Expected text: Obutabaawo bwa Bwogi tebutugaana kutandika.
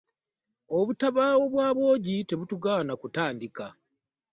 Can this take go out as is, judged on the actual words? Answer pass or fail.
pass